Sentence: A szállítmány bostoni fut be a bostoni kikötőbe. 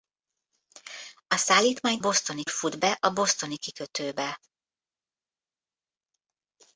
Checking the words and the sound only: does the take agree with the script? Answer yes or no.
yes